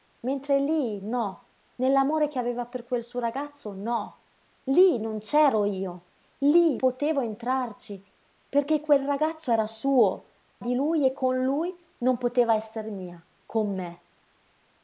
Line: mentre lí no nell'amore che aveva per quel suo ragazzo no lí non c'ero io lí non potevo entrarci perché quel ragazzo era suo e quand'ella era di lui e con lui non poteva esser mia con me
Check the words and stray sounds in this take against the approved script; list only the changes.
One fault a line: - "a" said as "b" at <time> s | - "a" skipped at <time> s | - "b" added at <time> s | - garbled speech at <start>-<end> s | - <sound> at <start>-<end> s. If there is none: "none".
- "non" skipped at 6.8 s
- "e quand'ella era" skipped at 10.3 s